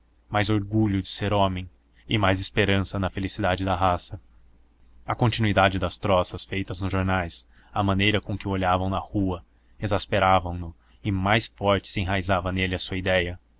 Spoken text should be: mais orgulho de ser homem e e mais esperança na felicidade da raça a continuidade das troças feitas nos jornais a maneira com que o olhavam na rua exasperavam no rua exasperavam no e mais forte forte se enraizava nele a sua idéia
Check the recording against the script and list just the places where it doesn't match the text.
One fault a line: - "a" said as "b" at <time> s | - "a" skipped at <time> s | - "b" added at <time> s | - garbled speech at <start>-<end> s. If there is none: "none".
- "e" skipped at 2.2 s
- "rua exasperavam no" skipped at 10.7 s
- "forte" skipped at 11.9 s